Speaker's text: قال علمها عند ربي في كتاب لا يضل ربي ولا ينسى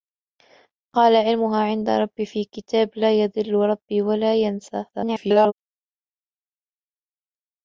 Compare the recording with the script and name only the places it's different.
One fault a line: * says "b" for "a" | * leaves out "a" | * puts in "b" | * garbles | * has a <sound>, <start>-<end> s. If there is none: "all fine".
* garbles